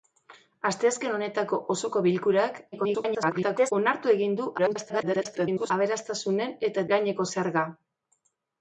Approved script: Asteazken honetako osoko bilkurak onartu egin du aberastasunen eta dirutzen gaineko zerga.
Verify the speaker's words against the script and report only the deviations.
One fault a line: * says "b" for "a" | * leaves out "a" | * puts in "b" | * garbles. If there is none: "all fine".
* garbles
* garbles
* leaves out "dirutzen"